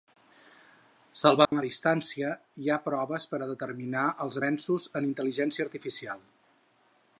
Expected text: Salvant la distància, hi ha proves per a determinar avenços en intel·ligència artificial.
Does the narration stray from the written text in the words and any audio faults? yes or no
yes